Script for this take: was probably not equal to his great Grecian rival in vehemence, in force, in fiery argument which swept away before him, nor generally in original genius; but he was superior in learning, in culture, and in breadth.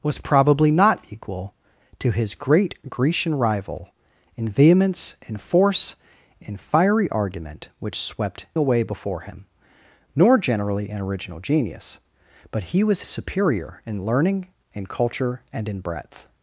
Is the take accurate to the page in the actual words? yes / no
yes